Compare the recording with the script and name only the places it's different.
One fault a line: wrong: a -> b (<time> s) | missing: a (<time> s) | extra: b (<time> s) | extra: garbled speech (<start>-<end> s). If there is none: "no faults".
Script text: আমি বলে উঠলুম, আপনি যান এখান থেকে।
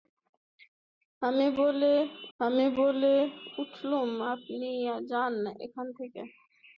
extra: আমি বলে (2.4 s)